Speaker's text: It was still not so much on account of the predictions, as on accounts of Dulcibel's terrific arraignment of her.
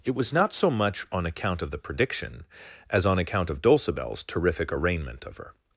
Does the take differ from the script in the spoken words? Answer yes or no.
yes